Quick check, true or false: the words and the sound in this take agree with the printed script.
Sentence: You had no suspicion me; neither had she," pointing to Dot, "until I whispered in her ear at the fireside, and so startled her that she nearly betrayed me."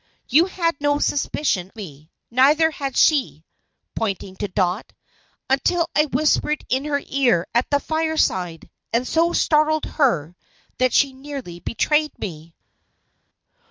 true